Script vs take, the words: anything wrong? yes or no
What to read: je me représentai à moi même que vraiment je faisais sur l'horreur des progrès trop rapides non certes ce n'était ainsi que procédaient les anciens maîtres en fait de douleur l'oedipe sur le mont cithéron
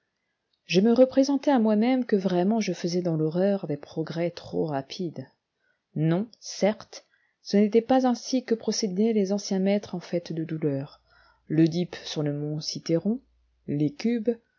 yes